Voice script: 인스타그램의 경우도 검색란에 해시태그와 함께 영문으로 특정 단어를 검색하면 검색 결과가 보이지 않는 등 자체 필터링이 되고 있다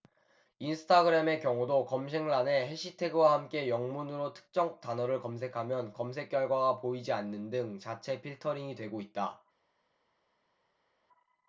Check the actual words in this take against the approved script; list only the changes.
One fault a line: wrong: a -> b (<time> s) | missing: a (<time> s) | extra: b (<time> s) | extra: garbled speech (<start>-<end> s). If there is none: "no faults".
no faults